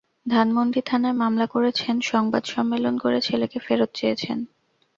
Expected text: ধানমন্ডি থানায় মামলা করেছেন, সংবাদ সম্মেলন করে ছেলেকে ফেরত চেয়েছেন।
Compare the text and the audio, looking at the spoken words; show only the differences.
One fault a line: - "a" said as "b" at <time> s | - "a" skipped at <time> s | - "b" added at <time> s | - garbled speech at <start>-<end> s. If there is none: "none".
none